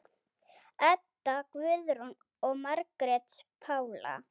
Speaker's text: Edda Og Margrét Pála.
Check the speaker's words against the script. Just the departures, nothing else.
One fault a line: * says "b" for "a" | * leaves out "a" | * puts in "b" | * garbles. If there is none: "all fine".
* puts in "Guðrún"